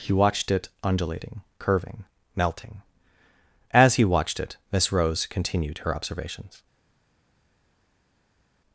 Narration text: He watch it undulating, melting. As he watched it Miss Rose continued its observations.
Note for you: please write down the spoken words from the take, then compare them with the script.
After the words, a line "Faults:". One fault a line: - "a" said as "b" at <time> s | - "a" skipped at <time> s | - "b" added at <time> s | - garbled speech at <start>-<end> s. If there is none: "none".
He watched it undulating, curving, melting. As he watched it Miss Rose continued her observations.
Faults:
- "watch" said as "watched" at 0.1 s
- "curving" added at 1.6 s
- "its" said as "her" at 5.8 s